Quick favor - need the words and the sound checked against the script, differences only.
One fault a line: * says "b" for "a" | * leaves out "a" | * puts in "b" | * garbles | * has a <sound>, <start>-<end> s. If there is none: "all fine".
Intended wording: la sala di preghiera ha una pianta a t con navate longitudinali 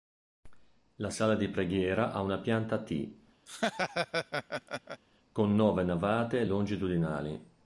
* has a laugh, 3.5-5.0 s
* puts in "nove"